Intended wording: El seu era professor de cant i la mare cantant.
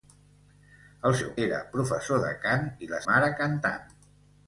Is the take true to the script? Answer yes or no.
yes